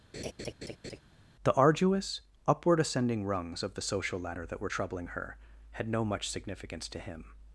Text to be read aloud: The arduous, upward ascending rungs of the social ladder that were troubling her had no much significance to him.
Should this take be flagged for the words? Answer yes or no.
no